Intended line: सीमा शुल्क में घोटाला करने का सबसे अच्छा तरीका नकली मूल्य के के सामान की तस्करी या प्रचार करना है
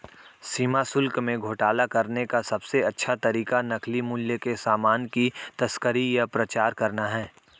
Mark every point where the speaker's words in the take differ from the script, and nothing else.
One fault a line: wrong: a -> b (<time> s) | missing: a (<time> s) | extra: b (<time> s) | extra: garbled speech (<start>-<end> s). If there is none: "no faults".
missing: के (4.5 s)